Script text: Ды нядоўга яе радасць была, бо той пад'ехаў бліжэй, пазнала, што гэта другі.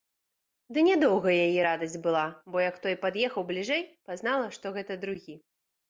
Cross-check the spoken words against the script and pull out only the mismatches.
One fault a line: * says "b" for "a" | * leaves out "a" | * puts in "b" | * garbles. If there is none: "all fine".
* puts in "як"